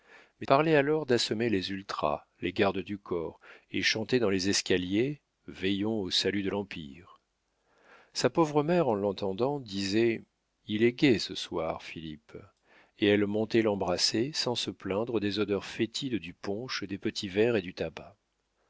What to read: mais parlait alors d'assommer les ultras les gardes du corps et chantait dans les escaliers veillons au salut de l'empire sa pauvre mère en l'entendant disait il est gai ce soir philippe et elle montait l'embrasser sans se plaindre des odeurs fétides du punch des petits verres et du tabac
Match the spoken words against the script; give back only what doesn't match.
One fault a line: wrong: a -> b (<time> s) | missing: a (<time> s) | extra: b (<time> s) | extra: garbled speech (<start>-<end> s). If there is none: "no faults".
no faults